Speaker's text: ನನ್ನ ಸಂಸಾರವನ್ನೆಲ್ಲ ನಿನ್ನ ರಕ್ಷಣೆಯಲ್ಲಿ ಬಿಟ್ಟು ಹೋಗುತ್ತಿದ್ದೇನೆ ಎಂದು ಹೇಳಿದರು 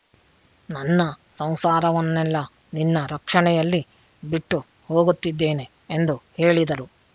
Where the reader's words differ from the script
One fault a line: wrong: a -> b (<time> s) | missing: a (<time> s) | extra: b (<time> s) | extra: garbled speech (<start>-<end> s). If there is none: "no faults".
no faults